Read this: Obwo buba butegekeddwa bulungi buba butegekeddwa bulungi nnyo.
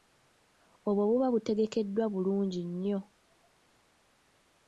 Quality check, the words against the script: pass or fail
fail